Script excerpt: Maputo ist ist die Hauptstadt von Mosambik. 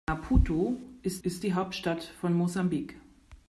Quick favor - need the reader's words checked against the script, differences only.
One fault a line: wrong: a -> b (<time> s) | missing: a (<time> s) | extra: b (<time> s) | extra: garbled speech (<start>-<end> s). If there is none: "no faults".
no faults